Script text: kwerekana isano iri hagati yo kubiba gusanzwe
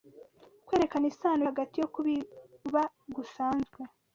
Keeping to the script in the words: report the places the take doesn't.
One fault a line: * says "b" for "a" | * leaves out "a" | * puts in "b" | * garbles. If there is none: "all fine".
all fine